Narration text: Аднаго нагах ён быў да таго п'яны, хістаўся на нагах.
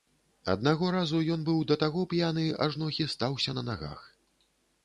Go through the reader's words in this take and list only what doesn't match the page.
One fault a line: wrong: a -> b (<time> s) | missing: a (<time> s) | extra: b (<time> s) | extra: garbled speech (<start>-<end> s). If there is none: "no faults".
wrong: нагах -> разу (0.9 s)
extra: ажно (2.7 s)